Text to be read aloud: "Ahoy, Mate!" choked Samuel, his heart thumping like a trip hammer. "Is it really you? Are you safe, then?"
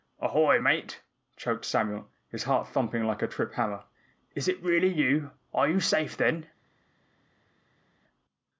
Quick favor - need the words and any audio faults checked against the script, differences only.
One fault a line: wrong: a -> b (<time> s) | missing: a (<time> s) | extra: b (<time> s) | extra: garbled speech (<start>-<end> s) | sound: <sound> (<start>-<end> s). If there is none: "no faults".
no faults